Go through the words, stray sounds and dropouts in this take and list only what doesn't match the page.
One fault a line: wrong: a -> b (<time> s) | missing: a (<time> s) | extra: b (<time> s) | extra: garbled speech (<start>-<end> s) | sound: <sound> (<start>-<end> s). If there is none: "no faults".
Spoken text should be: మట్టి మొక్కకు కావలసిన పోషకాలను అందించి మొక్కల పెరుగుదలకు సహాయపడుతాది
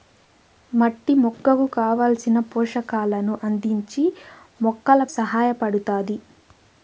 missing: పెరుగుదలకు (5.0 s)